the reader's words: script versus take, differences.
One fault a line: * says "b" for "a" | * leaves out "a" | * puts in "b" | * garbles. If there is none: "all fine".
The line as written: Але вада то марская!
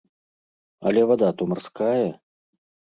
all fine